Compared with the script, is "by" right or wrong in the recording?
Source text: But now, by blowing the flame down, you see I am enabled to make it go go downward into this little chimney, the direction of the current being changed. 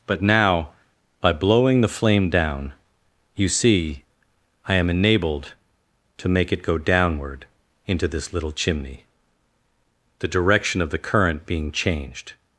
right